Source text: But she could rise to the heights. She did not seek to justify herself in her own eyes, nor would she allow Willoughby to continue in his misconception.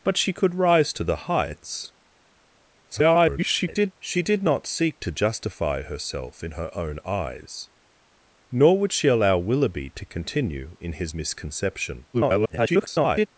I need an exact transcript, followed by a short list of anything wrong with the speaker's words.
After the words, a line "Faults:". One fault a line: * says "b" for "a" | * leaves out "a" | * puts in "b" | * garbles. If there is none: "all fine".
But she could rise to the heights. [garbled] She did not seek to justify herself in her own eyes, nor would she allow Willoughby to continue in his misconception. [garbled]
Faults:
* garbles
* garbles